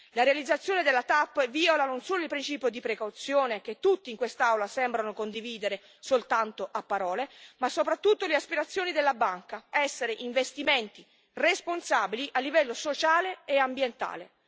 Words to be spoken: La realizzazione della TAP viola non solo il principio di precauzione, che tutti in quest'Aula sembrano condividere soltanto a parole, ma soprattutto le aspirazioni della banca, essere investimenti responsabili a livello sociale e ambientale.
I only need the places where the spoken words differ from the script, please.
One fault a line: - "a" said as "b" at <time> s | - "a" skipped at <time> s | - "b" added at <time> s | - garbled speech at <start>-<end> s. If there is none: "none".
none